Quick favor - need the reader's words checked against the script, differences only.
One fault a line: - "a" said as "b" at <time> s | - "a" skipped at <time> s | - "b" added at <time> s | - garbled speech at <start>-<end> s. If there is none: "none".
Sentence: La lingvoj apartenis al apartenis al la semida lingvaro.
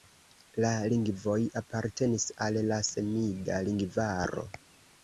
- "apartenis al" skipped at 2.6 s